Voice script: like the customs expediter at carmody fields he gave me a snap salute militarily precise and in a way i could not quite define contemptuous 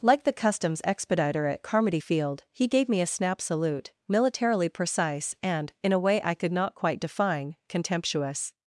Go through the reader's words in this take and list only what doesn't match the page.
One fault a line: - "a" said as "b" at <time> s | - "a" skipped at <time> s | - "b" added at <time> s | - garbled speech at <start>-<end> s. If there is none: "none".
- "fields" said as "field" at 2.0 s